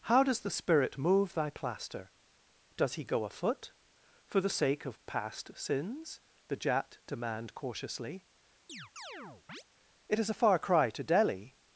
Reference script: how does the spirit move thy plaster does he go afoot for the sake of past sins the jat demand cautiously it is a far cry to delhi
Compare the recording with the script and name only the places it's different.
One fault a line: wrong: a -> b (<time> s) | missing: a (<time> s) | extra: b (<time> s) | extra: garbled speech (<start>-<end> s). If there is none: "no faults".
no faults